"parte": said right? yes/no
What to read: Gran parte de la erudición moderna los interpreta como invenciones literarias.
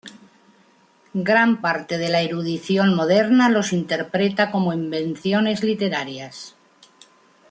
yes